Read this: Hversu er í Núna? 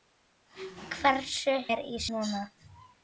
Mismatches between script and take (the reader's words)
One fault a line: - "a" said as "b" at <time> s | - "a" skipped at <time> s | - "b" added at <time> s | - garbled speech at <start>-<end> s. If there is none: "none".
none